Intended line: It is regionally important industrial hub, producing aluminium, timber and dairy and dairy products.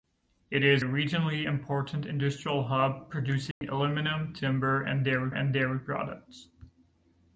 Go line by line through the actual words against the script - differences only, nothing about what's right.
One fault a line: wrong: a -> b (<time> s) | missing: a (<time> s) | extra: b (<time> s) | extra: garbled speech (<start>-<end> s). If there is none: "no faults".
no faults